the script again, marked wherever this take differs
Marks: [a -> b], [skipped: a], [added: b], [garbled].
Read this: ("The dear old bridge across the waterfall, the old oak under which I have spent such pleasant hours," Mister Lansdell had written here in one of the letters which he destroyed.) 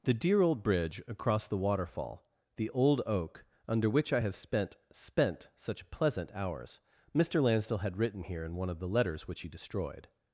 ("The dear old bridge across the waterfall, the old oak under which I have spent [added: spent] such pleasant hours," Mister Lansdell had written here in one of the letters which he destroyed.)